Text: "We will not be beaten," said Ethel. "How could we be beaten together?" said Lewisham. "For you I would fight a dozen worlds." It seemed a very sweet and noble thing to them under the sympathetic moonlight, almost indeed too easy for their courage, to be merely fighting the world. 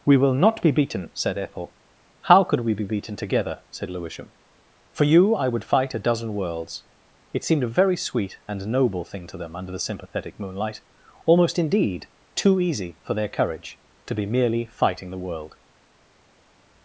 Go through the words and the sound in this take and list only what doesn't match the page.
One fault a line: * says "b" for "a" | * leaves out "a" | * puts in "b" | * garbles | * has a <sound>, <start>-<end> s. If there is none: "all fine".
all fine